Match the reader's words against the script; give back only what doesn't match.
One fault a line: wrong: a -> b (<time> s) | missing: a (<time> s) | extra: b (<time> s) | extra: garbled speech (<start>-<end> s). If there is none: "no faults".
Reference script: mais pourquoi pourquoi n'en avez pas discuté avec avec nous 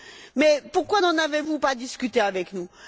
missing: pourquoi (1.0 s)
extra: vous (1.4 s)
missing: avec (2.5 s)